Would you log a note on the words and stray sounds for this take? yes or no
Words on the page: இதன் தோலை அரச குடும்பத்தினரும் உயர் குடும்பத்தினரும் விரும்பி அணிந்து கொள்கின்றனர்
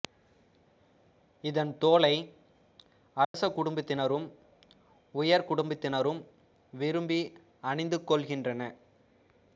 yes